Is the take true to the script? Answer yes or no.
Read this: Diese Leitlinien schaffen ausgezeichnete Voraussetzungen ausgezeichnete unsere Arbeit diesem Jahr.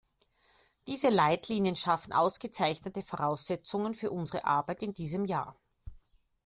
no